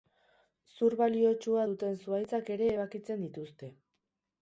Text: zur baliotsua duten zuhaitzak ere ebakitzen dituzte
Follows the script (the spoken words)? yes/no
yes